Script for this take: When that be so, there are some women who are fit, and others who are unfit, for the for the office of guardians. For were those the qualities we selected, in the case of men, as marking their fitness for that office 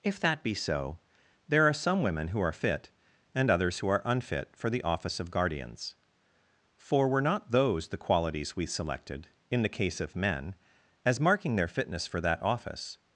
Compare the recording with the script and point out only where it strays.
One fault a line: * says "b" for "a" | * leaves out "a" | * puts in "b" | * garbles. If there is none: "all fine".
* says "If" for "When"
* leaves out "for the"
* puts in "not"